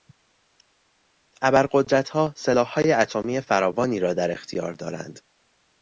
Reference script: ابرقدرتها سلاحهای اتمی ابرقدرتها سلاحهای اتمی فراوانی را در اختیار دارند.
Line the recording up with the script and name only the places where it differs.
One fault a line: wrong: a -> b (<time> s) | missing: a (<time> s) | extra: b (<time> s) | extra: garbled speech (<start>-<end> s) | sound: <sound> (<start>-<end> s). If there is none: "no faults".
missing: ابرقدرتها سلاحهای اتمی (3.4 s)